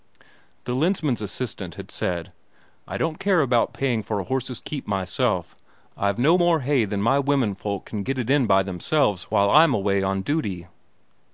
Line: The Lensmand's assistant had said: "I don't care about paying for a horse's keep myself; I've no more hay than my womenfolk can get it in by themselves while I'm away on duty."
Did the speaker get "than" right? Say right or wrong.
right